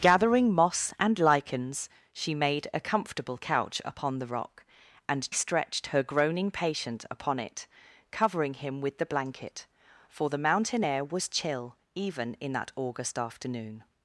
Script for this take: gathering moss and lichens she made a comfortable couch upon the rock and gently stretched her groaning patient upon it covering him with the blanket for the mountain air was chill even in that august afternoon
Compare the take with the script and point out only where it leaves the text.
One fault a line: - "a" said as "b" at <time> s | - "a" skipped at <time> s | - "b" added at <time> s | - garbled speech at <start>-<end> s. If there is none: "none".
- "gently" skipped at 5.3 s